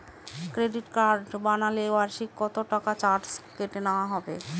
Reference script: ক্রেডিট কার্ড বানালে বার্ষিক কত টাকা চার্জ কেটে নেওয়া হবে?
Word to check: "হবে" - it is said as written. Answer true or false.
true